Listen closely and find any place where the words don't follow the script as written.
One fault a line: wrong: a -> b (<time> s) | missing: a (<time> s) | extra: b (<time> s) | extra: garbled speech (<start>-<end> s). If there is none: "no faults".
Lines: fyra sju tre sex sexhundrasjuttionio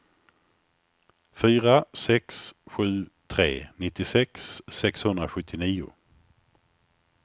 extra: sex (1.9 s)
wrong: sex -> nittiosex (3.8 s)